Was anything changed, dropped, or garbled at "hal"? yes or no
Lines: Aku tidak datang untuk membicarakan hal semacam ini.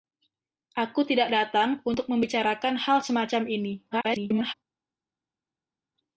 no